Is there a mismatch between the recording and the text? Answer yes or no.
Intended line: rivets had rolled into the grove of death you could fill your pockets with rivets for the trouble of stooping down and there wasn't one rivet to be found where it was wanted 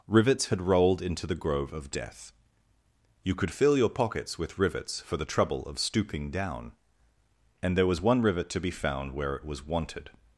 yes